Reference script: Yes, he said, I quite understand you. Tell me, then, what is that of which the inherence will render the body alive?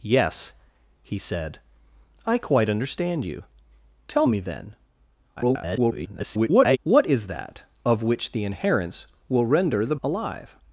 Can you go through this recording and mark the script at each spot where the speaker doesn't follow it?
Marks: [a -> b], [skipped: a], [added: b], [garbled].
Yes, he said, I quite understand you. Tell me, then, [garbled] what is that of which the inherence will render the [skipped: body] alive?